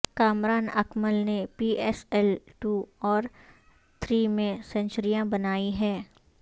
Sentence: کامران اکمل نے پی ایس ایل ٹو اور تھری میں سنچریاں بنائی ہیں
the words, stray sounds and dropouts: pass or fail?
pass